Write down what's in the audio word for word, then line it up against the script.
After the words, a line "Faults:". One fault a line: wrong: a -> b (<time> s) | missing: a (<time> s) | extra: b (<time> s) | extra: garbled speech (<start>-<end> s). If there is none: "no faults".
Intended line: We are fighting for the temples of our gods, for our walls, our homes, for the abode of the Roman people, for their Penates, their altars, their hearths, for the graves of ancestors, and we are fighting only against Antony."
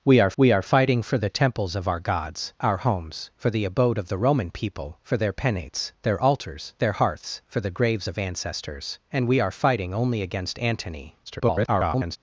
We are we are fighting for the temples of our gods, our homes, for the abode of the Roman people, for their Penates, their altars, their hearths, for the graves of ancestors, and we are fighting only against Antony." [garbled]
Faults:
extra: we are (0.4 s)
missing: for our walls (2.5 s)
extra: garbled speech (11.3-12.2 s)